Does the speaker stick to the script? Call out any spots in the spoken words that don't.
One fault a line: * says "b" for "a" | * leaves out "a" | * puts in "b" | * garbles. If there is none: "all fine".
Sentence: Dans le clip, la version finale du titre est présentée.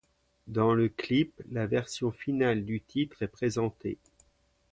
all fine